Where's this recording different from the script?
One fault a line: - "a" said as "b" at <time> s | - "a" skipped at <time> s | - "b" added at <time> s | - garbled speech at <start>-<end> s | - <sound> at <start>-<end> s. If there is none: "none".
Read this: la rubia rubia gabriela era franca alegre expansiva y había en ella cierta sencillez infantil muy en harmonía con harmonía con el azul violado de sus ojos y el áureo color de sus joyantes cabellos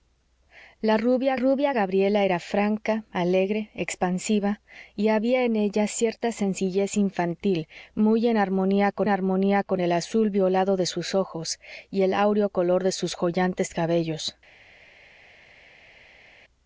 none